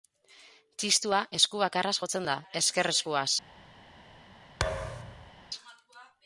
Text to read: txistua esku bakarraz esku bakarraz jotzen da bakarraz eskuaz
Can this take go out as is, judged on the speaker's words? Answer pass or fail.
fail